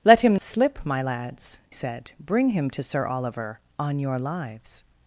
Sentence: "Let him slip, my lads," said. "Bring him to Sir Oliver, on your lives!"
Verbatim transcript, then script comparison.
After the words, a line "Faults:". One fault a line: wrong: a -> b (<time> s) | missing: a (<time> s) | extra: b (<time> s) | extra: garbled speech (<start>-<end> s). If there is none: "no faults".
"Let him slip, my lads," said. "Bring him to Sir Oliver, on your lives!"
Faults:
no faults